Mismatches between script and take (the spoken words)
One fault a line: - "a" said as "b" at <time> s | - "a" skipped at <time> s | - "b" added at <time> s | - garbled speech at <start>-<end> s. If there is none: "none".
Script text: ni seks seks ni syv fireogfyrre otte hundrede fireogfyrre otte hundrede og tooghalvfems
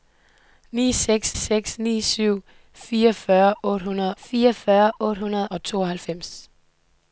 none